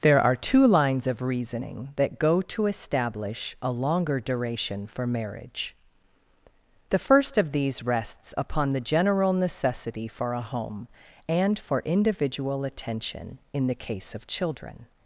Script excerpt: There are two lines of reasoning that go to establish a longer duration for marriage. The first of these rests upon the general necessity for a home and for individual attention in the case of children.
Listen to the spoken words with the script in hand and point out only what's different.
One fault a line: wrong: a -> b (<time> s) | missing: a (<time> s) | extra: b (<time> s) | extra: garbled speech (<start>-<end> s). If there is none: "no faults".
no faults